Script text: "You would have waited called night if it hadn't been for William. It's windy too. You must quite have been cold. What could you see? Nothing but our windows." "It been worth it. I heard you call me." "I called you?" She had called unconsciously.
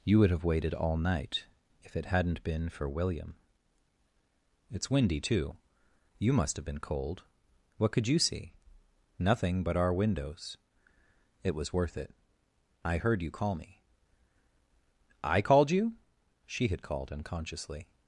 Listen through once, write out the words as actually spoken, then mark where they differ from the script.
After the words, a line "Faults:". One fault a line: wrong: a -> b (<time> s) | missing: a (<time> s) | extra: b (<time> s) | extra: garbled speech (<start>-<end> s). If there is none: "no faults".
"You would have waited all night if it hadn't been for William. It's windy too. You must have been cold. What could you see? Nothing but our windows." "It was worth it. I heard you call me." "I called you?" She had called unconsciously.
Faults:
wrong: called -> all (0.7 s)
missing: quite (6.5 s)
wrong: been -> was (11.5 s)